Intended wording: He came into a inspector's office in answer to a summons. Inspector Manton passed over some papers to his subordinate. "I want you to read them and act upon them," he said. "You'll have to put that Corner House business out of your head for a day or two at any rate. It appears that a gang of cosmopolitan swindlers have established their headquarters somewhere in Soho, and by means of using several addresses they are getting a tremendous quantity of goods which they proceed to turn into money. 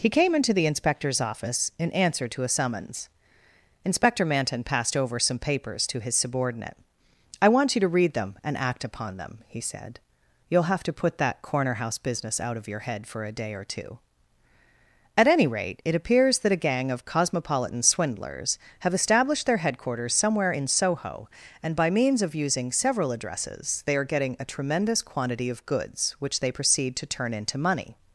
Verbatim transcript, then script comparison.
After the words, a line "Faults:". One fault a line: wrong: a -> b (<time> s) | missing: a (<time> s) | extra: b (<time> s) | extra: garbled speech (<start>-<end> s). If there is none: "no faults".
He came into the inspector's office in answer to a summons. Inspector Manton passed over some papers to his subordinate. "I want you to read them and act upon them," he said. "You'll have to put that Corner House business out of your head for a day or two at any rate. It appears that a gang of cosmopolitan swindlers have established their headquarters somewhere in Soho, and by means of using several addresses they are getting a tremendous quantity of goods which they proceed to turn into money.
Faults:
wrong: a -> the (0.5 s)